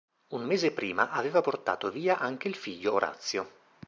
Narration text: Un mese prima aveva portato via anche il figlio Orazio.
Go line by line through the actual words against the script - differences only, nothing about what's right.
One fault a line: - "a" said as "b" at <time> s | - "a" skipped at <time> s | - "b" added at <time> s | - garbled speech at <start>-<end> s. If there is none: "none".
none